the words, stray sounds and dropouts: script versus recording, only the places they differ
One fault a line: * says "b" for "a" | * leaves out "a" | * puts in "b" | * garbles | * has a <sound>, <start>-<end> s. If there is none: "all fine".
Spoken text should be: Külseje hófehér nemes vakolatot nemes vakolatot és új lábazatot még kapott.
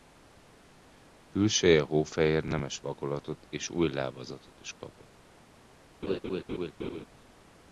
* leaves out "nemes vakolatot"
* says "is" for "még"
* has a laugh, 6.0-7.1 s